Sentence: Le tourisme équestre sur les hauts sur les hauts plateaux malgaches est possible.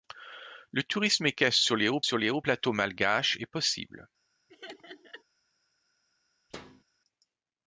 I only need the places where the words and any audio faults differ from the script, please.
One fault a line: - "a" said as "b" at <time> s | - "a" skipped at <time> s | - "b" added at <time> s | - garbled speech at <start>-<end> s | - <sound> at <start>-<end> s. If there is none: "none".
- laugh at 4.5-5.2 s
- thud at 6.5-6.8 s